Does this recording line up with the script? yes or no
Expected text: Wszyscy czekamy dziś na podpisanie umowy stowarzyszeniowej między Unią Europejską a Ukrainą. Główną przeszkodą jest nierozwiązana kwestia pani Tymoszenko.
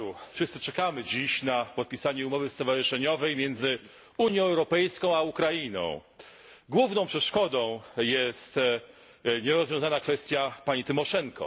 yes